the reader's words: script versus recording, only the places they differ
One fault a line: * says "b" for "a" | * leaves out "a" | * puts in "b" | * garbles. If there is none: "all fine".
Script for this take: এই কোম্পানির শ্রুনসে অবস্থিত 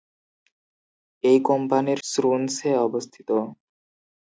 all fine